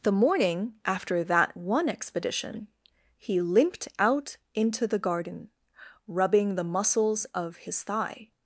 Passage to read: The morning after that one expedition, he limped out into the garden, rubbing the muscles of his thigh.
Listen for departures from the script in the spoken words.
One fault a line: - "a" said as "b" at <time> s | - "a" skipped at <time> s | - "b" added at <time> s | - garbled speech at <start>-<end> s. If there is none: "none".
none